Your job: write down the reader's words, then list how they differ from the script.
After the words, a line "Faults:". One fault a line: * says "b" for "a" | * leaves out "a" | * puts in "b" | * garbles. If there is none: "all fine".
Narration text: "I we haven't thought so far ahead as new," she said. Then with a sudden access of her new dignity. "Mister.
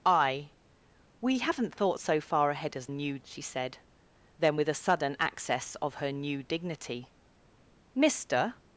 "I we haven't thought so far ahead as new," she said. Then with a sudden access of her new dignity. "Mister.
Faults:
all fine